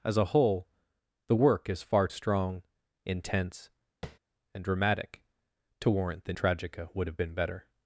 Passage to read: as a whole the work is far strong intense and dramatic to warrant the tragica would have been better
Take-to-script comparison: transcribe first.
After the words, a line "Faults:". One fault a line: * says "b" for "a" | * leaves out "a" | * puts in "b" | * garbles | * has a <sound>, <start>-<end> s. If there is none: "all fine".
as a whole the work is far strong intense and dramatic to warrant the tragica would have been better
Faults:
* has a tap, 4.0-4.2 s